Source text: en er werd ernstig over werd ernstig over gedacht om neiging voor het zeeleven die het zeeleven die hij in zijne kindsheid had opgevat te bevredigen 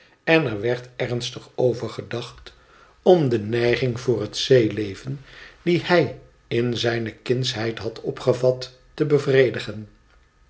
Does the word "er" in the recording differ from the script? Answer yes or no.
no